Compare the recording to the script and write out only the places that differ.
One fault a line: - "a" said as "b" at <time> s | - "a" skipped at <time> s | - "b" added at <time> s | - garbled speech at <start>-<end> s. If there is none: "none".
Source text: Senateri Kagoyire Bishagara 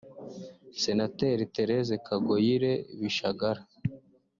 - "Thérèse" added at 1.5 s